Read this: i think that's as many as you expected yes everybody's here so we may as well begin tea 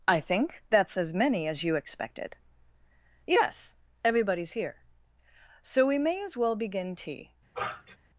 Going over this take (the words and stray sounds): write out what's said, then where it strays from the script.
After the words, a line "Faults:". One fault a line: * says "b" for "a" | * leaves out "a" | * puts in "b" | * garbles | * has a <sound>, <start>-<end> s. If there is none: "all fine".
i think that's as many as you expected yes everybody's here so we may as well begin tea
Faults:
* has a sniff, 7.5-8.0 s